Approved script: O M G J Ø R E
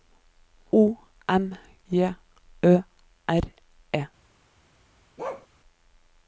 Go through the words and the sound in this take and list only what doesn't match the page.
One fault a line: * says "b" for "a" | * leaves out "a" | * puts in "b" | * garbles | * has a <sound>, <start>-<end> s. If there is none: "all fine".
* leaves out "G"
* has a bark, 5.2-5.5 s